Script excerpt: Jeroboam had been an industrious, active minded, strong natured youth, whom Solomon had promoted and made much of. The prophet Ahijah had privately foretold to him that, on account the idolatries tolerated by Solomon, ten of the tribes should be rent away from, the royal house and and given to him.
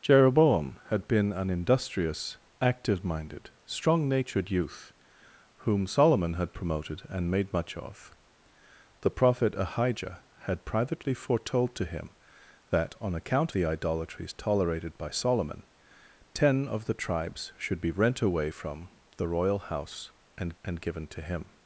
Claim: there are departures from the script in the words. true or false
false